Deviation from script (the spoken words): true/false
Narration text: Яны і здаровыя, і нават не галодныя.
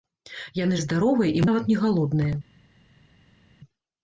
false